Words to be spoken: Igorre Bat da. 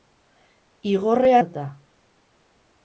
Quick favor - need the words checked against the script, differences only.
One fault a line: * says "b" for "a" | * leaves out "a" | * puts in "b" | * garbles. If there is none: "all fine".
all fine